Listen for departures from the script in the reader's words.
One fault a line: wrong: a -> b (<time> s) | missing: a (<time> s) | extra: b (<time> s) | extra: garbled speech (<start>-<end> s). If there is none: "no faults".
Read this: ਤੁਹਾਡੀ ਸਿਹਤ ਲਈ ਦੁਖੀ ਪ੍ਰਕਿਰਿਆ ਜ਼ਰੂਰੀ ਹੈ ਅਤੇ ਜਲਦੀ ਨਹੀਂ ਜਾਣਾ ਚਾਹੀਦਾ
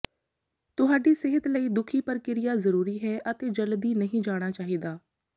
no faults